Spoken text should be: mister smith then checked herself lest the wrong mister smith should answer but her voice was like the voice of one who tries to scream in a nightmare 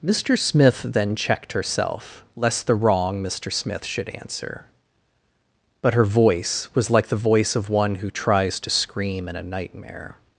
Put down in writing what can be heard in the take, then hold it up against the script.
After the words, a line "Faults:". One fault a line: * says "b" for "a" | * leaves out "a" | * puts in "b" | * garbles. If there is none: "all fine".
mister smith then checked herself lest the wrong mister smith should answer but her voice was like the voice of one who tries to scream in a nightmare
Faults:
all fine